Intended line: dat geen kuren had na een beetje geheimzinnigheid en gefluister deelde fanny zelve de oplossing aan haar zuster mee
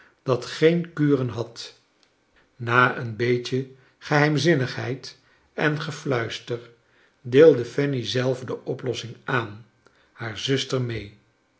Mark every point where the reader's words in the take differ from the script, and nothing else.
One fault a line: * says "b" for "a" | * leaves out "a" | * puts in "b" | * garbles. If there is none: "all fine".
all fine